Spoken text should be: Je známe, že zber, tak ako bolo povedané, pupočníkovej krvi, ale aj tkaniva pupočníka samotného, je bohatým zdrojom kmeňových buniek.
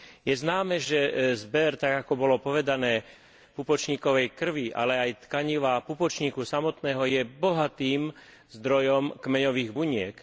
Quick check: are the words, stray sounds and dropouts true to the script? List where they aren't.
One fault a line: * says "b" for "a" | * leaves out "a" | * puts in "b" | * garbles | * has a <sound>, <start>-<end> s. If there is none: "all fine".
all fine